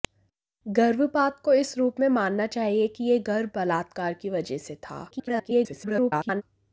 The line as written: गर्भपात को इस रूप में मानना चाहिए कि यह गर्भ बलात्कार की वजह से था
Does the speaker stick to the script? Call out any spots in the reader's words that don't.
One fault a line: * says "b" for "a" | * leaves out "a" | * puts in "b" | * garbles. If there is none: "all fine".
* garbles